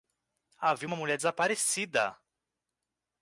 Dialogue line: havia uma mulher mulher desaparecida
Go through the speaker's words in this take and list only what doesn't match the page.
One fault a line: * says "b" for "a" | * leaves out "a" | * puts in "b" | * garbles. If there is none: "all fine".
* leaves out "mulher"